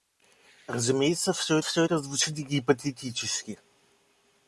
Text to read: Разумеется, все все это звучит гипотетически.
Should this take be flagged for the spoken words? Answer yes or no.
no